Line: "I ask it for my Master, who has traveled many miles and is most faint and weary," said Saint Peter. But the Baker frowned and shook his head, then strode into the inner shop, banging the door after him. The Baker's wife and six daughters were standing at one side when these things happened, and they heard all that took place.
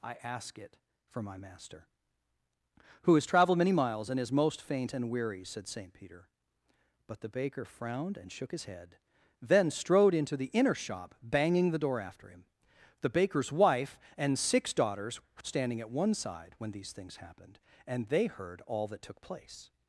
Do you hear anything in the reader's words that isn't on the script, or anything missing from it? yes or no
no